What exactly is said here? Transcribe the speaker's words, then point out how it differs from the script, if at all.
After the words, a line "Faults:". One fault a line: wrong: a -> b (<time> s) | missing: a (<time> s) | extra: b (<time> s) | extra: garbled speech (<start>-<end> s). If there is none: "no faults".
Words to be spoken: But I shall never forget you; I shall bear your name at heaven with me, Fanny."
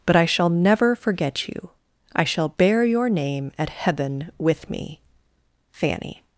But I shall never forget you; I shall bear your name at heaven with me, Fanny."
Faults:
no faults